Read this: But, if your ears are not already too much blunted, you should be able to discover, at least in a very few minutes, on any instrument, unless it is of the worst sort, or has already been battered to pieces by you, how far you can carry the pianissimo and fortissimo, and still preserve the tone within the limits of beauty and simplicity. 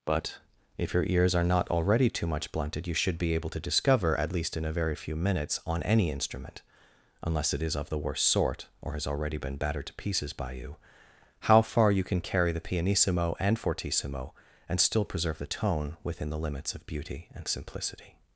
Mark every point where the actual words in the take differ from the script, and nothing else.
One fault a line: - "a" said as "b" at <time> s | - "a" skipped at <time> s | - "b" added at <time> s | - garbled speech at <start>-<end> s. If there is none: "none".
none